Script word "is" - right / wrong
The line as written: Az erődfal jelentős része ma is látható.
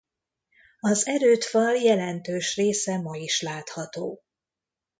right